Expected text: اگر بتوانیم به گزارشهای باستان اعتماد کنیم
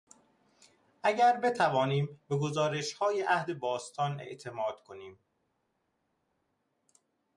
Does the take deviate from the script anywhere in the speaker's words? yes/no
yes